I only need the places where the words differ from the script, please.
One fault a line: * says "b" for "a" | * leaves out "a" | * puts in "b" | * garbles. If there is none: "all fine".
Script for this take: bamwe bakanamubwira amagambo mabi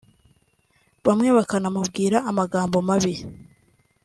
all fine